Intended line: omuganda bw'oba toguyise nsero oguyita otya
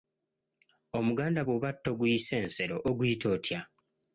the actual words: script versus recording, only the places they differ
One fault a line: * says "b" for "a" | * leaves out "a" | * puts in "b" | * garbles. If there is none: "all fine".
all fine